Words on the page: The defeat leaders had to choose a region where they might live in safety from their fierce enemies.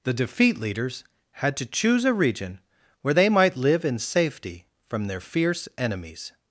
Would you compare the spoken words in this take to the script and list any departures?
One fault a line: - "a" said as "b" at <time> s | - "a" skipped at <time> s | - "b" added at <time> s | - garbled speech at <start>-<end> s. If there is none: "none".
none